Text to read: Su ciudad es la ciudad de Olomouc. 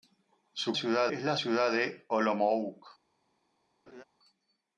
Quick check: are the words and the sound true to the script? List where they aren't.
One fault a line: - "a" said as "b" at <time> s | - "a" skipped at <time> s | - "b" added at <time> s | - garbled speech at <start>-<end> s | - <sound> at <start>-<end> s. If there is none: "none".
- laugh at 3.9-4.0 s